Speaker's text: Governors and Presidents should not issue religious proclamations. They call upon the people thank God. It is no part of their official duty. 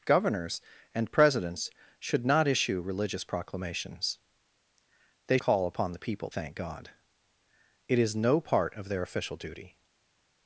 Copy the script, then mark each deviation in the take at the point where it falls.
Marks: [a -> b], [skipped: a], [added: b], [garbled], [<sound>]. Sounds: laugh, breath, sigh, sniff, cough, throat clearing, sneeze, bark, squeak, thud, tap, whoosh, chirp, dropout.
Governors and Presidents should not issue religious proclamations. They call upon the people thank God. It is no part of their official duty.